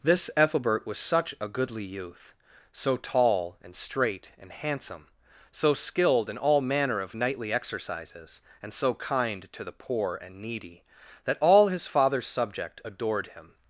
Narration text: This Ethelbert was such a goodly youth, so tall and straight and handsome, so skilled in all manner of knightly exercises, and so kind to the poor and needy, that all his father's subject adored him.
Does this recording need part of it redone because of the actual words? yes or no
no